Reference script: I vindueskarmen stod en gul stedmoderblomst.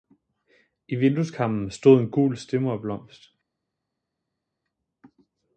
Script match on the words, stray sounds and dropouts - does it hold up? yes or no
yes